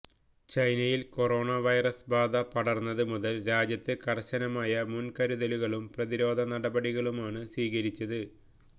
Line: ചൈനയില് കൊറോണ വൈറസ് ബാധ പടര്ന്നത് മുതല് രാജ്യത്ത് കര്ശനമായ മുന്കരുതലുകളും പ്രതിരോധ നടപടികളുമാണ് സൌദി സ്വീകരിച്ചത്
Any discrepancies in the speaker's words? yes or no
yes